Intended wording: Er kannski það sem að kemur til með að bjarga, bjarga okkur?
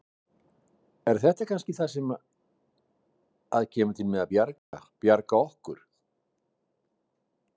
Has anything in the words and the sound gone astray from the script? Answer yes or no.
yes